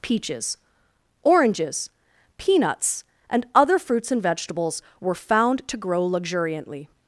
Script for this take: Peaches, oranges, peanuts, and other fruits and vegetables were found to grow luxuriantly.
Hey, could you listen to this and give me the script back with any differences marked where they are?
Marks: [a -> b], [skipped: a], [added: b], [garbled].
Peaches, oranges, peanuts, and other fruits and vegetables were found to grow luxuriantly.